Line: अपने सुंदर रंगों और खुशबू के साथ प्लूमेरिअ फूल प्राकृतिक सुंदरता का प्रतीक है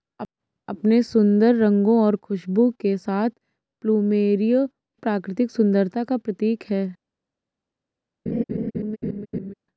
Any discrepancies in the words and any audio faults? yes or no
yes